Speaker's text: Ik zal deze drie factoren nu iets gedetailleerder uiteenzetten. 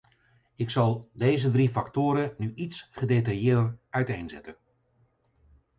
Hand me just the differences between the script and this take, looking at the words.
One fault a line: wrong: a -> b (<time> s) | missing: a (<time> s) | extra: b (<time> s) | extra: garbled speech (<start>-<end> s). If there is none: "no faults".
no faults